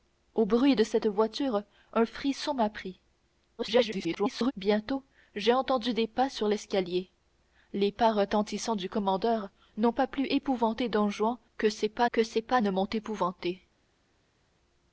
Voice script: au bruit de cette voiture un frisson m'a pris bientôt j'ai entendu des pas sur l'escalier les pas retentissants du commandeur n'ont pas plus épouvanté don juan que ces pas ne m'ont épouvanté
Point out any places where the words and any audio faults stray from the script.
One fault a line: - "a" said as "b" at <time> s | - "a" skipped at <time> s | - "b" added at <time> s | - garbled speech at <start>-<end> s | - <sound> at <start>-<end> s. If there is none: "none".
- garbled speech at 3.6-4.5 s
- "que ces pas" added at 12.1 s